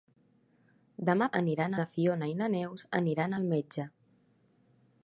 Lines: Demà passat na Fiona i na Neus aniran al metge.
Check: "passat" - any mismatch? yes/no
yes